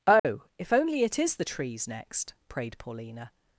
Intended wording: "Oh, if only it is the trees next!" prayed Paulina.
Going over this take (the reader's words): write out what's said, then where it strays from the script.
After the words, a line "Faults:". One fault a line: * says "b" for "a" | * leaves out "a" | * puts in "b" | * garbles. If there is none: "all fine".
"Oh, if only it is the trees next!" prayed Paulina.
Faults:
all fine